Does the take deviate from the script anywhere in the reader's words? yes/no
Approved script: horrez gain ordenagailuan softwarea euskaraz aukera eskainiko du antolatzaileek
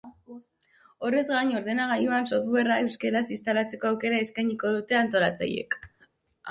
yes